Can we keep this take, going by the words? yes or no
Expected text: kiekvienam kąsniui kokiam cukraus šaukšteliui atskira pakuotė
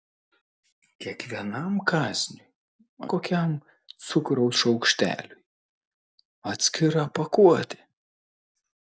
yes